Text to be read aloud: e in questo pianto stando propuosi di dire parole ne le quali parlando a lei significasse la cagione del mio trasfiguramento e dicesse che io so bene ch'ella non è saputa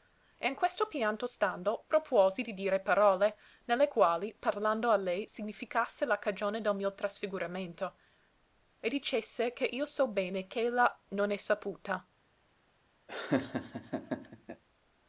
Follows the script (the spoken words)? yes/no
yes